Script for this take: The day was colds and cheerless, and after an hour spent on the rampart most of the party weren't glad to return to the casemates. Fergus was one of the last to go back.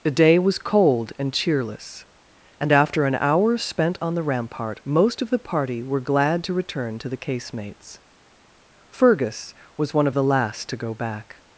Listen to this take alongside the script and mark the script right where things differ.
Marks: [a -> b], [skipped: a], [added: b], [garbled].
The day was [colds -> cold] and cheerless, and after an hour spent on the rampart most of the party [weren't -> were] glad to return to the casemates. Fergus was one of the last to go back.